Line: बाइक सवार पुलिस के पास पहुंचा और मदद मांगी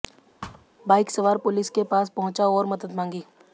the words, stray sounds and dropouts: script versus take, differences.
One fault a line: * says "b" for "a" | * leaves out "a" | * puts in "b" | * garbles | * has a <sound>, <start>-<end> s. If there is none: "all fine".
* has a thud, 0.4-0.7 s